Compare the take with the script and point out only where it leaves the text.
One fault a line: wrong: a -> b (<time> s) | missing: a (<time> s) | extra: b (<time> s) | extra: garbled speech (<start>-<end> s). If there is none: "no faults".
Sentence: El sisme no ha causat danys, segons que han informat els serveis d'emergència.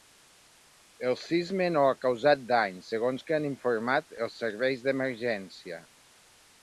no faults